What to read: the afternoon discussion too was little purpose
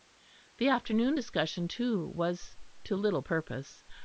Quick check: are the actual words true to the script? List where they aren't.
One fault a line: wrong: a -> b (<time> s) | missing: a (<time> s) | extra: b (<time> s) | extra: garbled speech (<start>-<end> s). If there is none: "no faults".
extra: to (2.8 s)